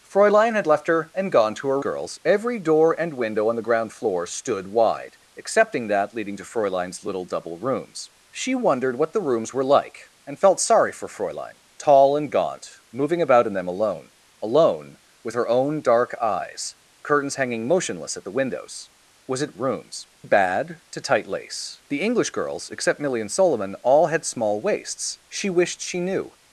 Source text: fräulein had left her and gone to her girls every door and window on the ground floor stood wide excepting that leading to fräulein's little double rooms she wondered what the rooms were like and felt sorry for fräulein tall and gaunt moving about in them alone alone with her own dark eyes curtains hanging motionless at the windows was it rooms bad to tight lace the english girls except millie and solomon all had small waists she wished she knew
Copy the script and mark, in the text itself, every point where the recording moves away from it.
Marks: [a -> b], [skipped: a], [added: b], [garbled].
fräulein had left her and gone to her girls every door and window on the ground floor stood wide excepting that leading to fräulein's little double rooms she wondered what the rooms were like and felt sorry for fräulein tall and gaunt moving about in them alone alone with her own dark eyes curtains hanging motionless at the windows was it rooms bad to tight lace the english girls except millie and solomon all had small waists she wished she knew